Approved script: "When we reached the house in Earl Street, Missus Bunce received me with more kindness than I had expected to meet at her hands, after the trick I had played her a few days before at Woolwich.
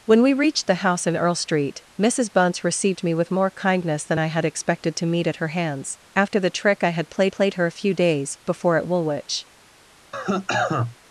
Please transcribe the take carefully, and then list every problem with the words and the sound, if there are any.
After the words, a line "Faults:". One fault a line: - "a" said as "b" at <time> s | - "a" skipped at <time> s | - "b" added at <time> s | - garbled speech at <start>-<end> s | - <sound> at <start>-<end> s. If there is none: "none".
"When we reached the house in Earl Street, Missus Bunce received me with more kindness than I had expected to meet at her hands, after the trick I had played played her a few days before at Woolwich.
Faults:
- "played" added at 7.3 s
- cough at 10.1-11.0 s